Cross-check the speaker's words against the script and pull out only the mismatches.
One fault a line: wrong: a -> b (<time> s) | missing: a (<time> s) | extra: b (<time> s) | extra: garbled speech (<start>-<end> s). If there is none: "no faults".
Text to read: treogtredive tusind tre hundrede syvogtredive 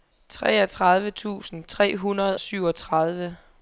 no faults